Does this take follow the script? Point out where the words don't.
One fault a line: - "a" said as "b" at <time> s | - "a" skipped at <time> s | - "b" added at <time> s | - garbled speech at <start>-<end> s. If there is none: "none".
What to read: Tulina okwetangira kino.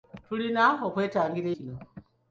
none